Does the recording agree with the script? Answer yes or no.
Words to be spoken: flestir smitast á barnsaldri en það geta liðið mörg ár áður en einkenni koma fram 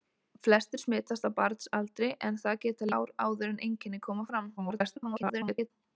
no